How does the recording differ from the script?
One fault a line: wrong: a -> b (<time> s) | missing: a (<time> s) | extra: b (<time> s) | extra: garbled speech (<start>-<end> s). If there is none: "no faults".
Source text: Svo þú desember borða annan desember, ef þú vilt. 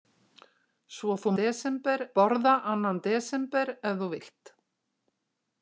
no faults